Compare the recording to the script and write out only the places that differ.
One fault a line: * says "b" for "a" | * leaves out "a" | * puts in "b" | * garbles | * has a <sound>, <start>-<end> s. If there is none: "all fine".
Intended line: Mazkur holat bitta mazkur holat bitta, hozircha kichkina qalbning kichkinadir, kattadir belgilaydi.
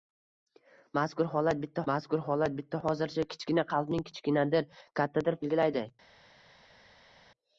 all fine